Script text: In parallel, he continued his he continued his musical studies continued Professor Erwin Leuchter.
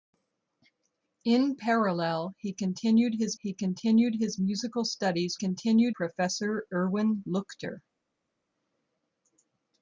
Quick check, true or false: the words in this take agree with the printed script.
true